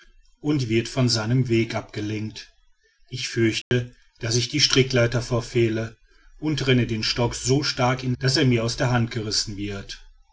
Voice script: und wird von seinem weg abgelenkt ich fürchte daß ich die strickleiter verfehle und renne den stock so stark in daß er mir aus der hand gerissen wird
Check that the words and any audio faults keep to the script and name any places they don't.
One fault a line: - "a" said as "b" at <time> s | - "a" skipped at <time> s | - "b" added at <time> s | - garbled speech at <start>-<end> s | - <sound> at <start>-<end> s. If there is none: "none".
- dropout at 3.6-3.7 s